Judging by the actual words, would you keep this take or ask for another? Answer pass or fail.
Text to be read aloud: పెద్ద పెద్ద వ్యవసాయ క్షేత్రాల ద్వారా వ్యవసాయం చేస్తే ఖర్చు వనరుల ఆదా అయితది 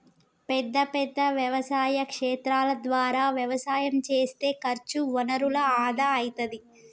pass